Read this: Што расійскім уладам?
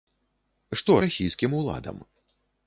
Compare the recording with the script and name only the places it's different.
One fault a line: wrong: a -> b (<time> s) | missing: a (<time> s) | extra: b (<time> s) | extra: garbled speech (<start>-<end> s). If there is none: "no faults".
no faults